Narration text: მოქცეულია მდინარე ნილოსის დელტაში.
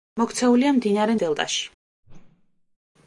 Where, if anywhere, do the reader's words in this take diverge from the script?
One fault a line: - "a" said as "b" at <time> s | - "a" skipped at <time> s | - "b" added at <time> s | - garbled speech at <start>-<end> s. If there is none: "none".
- "ნილოსის" skipped at 1.2 s